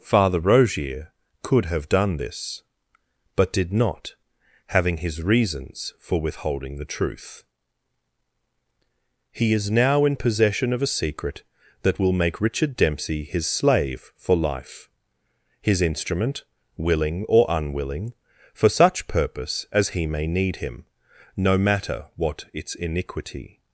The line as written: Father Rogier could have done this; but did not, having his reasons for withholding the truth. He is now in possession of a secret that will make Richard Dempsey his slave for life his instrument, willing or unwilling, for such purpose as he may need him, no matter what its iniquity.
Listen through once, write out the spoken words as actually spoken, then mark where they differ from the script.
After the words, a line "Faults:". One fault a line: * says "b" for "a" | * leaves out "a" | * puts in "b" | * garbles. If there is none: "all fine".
Father Rogier could have done this; but did not, having his reasons for withholding the truth. He is now in possession of a secret that will make Richard Dempsey his slave for life his instrument, willing or unwilling, for such purpose as he may need him, no matter what its iniquity.
Faults:
all fine